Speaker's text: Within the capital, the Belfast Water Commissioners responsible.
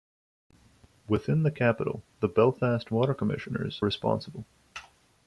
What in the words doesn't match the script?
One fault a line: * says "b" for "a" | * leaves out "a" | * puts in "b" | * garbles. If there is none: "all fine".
all fine